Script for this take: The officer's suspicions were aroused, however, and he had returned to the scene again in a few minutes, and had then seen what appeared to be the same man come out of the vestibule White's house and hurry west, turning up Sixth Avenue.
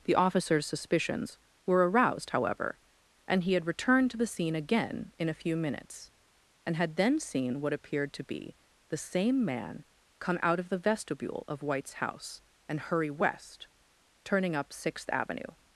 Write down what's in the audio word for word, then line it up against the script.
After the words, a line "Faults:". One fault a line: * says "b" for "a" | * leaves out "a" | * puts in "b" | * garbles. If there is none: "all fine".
The officer's suspicions were aroused, however, and he had returned to the scene again in a few minutes, and had then seen what appeared to be the same man come out of the vestibule of White's house and hurry west, turning up Sixth Avenue.
Faults:
* puts in "of"